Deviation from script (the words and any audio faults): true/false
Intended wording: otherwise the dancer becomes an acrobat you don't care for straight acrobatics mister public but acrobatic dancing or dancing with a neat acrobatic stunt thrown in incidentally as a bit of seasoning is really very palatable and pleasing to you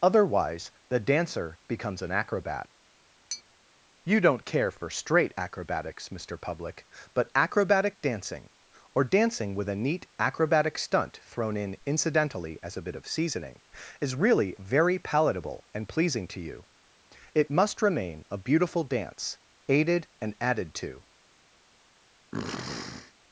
true